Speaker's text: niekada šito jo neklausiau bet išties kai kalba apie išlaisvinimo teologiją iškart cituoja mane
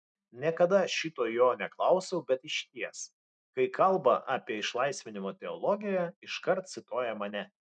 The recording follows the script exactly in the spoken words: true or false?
true